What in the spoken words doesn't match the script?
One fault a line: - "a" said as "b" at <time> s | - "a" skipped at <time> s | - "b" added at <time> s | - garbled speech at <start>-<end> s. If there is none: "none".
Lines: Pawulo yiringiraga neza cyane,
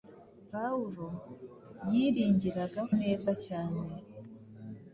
none